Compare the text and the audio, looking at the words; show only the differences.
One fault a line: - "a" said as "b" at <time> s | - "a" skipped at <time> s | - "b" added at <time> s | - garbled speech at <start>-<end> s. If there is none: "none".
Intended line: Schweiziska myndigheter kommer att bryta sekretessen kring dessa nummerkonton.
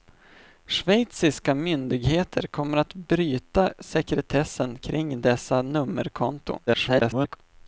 - garbled speech at 6.7-7.4 s